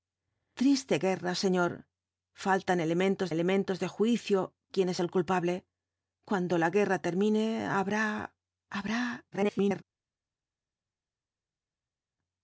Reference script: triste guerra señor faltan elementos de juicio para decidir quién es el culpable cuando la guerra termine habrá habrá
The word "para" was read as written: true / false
false